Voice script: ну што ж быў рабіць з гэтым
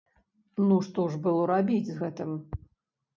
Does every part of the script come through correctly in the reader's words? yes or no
no